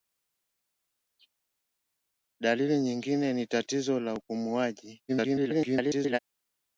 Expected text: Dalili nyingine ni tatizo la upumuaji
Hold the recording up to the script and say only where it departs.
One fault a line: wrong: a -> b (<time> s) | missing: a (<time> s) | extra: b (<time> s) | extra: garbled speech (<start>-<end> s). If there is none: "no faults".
extra: garbled speech (5.1-6.2 s)